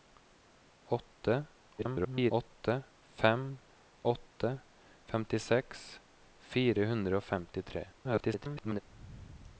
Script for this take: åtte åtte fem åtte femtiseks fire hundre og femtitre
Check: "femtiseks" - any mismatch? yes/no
no